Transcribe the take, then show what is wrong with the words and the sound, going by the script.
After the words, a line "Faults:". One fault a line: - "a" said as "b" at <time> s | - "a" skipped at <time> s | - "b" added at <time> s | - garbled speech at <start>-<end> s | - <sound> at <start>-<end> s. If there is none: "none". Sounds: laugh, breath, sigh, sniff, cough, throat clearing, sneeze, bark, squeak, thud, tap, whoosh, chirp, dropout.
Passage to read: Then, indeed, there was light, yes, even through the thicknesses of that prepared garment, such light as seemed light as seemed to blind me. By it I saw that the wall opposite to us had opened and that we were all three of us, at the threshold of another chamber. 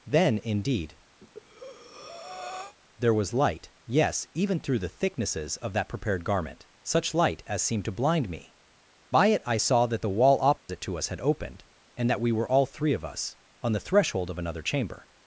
Then, indeed, there was light, yes, even through the thicknesses of that prepared garment, such light as seemed to blind me. By it I saw that the wall opposite to us had opened and that we were all three of us, on the threshold of another chamber.
Faults:
- breath at 1.2-2.8 s
- "light as seemed" skipped at 7.8 s
- dropout at 10.6-10.7 s
- "at" said as "on" at 13.6 s